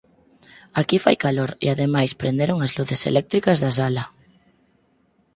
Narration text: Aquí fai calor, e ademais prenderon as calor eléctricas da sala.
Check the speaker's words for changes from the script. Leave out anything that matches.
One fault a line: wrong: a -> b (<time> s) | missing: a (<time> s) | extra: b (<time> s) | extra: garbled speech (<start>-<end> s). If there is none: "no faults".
wrong: calor -> luces (2.8 s)